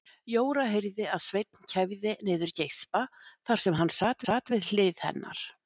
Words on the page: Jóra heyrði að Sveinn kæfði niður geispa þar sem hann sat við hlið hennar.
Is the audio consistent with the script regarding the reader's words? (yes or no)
no